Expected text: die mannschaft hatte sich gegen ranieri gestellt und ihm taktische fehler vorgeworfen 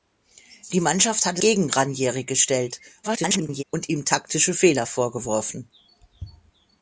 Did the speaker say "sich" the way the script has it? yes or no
no